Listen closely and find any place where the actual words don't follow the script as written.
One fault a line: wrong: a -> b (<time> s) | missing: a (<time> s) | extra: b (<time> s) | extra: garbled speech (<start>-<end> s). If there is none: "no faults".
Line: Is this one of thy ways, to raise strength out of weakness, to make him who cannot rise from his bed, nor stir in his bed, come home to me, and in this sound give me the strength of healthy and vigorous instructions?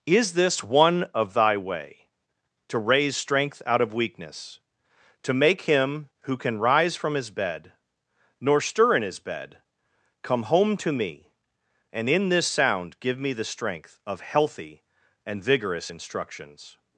wrong: ways -> way (1.6 s)
wrong: cannot -> can (6.4 s)